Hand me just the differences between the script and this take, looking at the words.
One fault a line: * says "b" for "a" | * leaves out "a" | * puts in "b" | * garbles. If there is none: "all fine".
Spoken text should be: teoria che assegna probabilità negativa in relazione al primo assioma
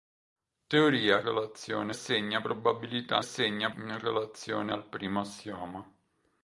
* says "relazione" for "che"
* says "assegna" for "negativa"